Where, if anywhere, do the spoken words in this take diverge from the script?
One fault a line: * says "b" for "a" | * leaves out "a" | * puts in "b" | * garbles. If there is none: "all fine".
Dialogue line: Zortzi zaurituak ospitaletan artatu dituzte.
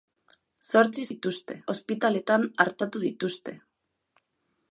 * says "dituzte" for "zaurituak"